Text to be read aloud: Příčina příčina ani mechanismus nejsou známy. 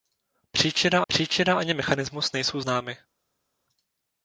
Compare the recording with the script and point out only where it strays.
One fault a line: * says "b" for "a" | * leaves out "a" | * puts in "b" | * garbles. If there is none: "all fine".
all fine